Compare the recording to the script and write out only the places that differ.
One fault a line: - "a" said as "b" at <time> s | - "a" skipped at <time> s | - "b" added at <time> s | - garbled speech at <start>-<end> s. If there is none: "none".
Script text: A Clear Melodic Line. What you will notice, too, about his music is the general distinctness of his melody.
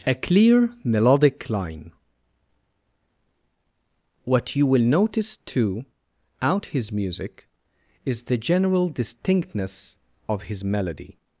- "about" said as "out" at 6.4 s